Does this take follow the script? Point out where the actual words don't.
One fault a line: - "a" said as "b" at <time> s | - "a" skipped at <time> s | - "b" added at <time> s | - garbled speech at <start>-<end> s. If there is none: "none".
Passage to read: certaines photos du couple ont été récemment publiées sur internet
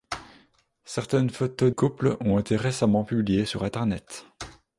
- "du" skipped at 1.7 s